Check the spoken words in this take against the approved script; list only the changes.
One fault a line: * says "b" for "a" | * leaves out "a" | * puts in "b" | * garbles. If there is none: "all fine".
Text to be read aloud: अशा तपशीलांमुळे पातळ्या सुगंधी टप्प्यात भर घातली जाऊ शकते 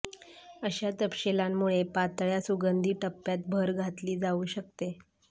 all fine